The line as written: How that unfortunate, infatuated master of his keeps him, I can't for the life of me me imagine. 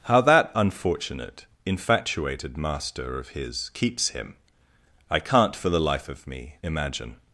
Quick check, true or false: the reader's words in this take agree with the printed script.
false